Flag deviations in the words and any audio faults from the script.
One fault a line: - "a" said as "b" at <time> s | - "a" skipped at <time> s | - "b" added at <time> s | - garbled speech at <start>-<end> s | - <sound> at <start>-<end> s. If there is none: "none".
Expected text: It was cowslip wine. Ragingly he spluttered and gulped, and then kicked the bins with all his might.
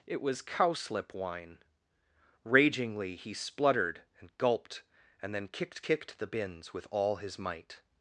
- "kicked" added at 5.8 s